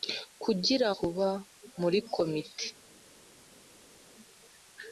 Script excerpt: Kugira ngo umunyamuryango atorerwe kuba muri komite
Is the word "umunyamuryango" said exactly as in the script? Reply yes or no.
no